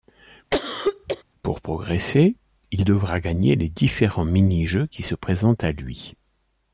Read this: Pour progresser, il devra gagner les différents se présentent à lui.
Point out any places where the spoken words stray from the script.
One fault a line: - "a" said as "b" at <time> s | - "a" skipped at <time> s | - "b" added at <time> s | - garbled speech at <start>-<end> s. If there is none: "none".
- "mini jeux qui" added at 4.3 s